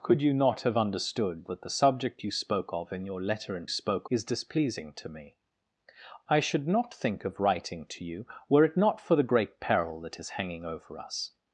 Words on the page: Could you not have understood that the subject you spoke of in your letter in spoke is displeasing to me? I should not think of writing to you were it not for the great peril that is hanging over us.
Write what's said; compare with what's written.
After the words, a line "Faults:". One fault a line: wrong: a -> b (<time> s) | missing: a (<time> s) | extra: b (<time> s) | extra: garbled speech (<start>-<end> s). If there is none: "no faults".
Could you not have understood that the subject you spoke of in your letter in spoke is displeasing to me? I should not think of writing to you were it not for the great peril that is hanging over us.
Faults:
no faults